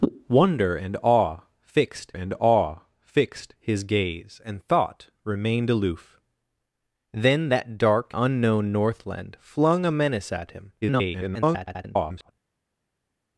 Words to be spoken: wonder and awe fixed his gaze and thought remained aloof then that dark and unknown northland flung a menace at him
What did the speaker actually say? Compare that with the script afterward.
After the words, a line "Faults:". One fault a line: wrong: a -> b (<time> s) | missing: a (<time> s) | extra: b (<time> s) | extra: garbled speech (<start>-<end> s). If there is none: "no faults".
wonder and awe fixed and awe fixed his gaze and thought remained aloof then that dark unknown northland flung a menace at him [garbled]
Faults:
extra: and awe fixed (2.1 s)
missing: and (8.1 s)
extra: garbled speech (10.8-12.3 s)